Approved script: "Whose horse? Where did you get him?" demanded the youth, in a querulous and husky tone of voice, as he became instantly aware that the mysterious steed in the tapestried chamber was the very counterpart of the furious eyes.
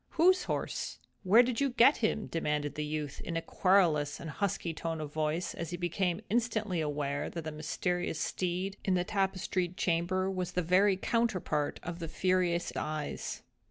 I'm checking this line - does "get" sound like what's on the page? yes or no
yes